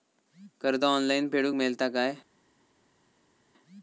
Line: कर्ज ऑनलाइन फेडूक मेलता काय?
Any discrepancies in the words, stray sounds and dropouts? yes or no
no